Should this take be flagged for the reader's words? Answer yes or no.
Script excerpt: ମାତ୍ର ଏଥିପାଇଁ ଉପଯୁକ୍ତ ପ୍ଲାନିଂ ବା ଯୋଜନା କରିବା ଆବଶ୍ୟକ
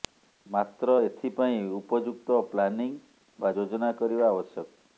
no